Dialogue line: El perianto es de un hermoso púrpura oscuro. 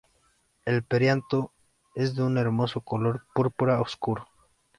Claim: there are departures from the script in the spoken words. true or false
true